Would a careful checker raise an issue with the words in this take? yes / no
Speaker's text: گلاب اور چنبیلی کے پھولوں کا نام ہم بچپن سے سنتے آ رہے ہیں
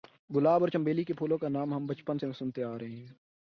no